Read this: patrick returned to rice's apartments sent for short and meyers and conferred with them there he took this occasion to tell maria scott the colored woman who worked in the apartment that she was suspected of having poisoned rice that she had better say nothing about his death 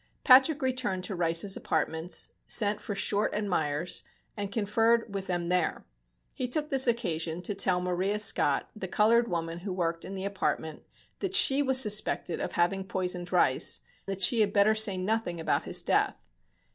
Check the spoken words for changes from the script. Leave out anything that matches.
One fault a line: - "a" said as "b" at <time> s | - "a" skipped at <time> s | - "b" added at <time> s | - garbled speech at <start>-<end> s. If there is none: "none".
none